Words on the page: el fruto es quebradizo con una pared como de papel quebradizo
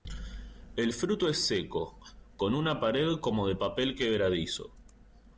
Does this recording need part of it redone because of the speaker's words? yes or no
yes